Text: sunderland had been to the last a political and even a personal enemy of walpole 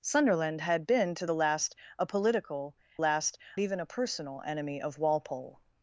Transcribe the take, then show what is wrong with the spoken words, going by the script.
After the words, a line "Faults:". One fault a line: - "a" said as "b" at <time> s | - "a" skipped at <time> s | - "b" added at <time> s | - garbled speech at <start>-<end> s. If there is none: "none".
sunderland had been to the last a political last even a personal enemy of walpole
Faults:
- "and" said as "last" at 3.0 s